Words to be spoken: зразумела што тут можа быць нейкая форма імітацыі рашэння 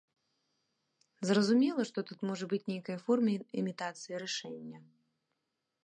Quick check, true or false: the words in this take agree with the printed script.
true